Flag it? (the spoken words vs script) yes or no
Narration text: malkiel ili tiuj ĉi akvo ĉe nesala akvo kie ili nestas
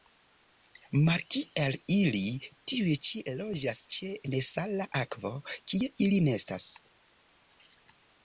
yes